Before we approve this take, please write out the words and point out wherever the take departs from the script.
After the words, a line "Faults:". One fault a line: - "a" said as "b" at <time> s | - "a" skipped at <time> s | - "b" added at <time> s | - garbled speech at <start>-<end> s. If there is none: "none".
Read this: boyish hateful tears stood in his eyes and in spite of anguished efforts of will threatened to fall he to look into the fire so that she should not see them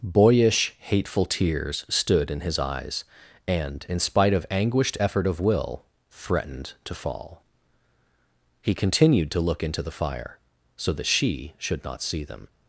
boyish hateful tears stood in his eyes and in spite of anguished effort of will threatened to fall he continued to look into the fire so that she should not see them
Faults:
- "efforts" said as "effort" at 5.0 s
- "continued" added at 8.7 s